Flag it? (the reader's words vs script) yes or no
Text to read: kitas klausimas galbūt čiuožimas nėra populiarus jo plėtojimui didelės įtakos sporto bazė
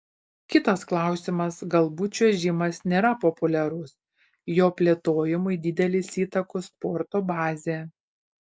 no